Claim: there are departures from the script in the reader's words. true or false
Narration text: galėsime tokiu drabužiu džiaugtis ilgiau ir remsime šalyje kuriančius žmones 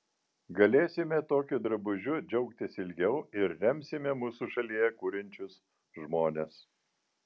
true